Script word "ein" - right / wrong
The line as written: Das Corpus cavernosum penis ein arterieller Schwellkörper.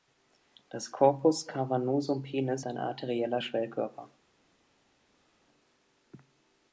right